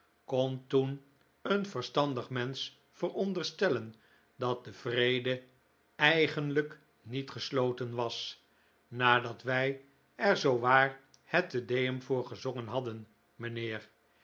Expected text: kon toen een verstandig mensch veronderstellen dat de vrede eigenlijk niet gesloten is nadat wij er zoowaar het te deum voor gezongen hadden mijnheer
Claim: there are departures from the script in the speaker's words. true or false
true